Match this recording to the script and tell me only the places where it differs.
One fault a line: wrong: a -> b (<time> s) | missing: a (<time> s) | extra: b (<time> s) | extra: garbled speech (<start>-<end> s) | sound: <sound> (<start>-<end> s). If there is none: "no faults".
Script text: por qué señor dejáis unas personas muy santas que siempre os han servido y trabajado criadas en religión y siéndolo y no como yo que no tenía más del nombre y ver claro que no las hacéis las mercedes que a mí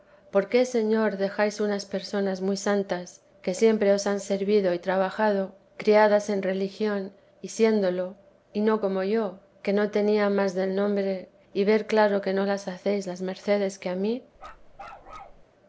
sound: bark (14.4-15.4 s)